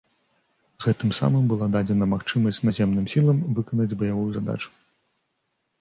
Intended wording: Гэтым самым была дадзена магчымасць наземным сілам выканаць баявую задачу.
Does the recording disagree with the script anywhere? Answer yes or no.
no